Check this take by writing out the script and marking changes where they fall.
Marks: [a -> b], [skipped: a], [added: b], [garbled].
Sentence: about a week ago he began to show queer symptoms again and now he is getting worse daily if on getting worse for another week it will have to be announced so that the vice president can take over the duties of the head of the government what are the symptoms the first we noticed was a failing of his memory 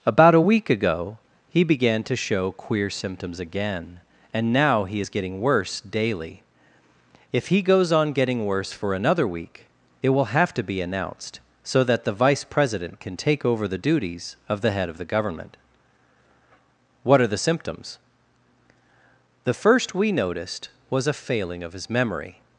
about a week ago he began to show queer symptoms again and now he is getting worse daily if [added: he goes] on getting worse for another week it will have to be announced so that the vice president can take over the duties of the head of the government what are the symptoms the first we noticed was a failing of his memory